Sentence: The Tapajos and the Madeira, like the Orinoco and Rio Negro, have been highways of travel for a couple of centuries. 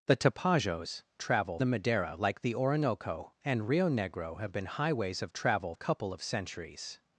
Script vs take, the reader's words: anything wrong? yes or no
yes